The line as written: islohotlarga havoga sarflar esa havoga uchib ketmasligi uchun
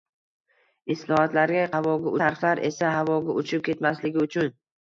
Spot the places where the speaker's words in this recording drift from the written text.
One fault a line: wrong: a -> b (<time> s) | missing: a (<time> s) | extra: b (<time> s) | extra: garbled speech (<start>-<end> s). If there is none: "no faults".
no faults